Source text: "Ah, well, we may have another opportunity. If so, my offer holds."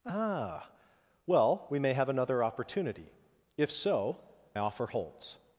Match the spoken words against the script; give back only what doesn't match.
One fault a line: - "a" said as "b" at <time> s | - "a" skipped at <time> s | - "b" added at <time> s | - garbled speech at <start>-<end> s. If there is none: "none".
- "my" skipped at 4.2 s